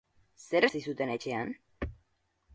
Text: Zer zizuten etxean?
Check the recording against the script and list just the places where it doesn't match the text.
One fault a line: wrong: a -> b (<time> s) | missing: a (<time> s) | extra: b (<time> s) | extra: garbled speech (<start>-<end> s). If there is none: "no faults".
no faults